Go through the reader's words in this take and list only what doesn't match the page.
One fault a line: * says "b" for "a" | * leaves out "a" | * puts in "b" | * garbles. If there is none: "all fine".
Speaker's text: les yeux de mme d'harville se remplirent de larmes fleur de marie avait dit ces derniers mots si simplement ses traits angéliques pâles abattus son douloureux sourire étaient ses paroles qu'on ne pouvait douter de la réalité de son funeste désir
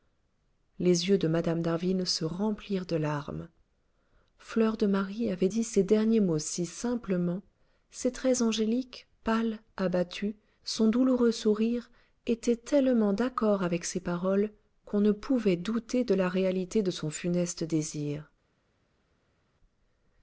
* puts in "tellement d'accord avec"